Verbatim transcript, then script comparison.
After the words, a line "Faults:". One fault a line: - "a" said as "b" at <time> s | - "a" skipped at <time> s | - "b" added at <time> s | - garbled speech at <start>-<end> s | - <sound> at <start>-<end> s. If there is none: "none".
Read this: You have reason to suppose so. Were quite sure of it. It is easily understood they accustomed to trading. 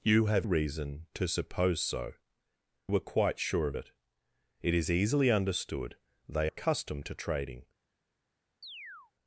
You have reason to suppose so. Were quite sure of it. It is easily understood they accustomed to trading.
Faults:
- chirp at 8.6-9.1 s